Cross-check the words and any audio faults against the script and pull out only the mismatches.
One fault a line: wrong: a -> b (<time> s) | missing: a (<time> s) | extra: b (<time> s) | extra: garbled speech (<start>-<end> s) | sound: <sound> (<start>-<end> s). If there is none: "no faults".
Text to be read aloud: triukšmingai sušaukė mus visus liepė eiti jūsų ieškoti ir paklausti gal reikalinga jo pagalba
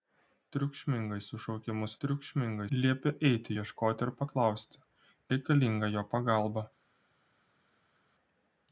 wrong: visus -> triukšmingai (2.0 s)
missing: jūsų (3.6 s)
missing: gal (4.8 s)